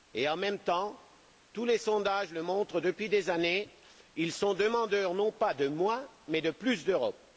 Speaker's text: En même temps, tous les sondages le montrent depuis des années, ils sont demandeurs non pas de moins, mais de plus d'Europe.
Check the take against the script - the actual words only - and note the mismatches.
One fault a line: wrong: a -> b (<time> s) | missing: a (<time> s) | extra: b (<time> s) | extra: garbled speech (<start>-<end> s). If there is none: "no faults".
no faults